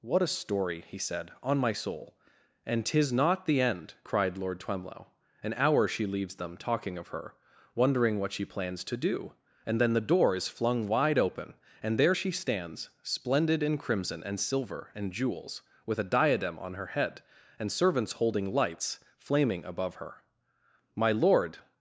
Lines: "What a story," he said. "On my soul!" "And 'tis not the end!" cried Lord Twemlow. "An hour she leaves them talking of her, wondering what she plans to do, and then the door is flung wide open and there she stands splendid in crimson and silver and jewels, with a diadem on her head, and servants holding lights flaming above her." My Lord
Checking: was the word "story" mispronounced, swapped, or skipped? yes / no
no